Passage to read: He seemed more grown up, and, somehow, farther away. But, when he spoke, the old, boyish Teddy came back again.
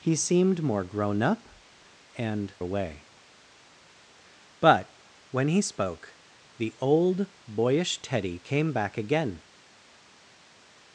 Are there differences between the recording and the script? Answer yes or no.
yes